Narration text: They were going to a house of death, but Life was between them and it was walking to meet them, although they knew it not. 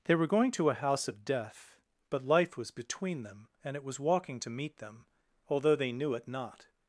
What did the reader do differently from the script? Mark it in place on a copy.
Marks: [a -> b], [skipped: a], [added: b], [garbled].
They were going to a house of death, but Life was between them and it was walking to meet them, although they knew it not.